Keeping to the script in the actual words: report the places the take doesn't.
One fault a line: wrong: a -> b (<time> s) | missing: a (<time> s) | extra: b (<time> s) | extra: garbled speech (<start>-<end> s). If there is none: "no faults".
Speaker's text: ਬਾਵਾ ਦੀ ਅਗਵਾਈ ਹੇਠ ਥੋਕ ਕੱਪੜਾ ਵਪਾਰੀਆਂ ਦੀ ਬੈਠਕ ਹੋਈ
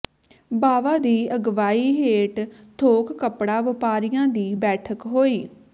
no faults